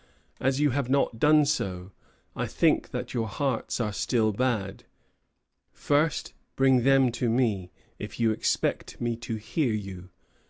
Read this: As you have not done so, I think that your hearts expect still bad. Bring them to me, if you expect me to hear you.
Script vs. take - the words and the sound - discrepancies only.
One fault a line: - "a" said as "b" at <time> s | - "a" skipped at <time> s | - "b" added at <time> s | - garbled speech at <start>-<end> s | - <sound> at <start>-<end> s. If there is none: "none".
- "expect" said as "are" at 3.8 s
- "First" added at 5.7 s